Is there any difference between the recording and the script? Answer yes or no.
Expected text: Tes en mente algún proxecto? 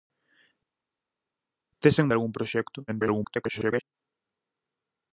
yes